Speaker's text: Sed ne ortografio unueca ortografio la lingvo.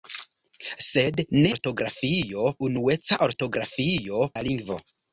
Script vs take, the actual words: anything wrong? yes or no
no